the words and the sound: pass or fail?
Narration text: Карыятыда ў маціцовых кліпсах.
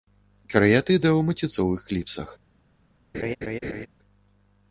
fail